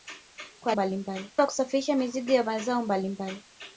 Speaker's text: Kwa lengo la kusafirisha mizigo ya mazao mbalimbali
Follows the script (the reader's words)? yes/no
no